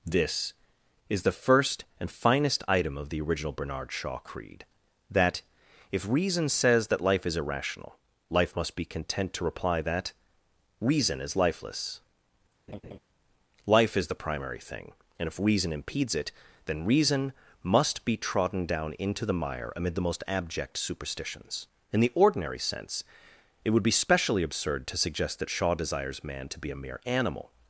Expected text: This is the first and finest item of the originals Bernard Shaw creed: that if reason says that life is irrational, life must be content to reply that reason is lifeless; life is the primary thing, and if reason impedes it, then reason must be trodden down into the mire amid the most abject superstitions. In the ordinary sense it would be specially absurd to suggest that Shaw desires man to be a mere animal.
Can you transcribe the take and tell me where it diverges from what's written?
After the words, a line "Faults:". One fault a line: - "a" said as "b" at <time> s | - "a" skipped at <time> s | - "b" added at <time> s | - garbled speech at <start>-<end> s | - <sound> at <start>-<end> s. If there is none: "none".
This is the first and finest item of the original Bernard Shaw creed: that if reason says that life is irrational, life must be content to reply that reason is lifeless; life is the primary thing, and if reason impedes it, then reason must be trodden down into the mire amid the most abject superstitions. In the ordinary sense it would be specially absurd to suggest that Shaw desires man to be a mere animal.
Faults:
- "originals" said as "original" at 3.2 s
- laugh at 12.7-13.0 s